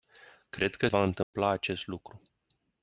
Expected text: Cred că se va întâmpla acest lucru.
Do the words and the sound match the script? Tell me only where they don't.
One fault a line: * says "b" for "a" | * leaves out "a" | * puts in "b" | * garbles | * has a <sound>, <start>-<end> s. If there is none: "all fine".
* leaves out "se"
* has a dropout, 1.2-1.3 s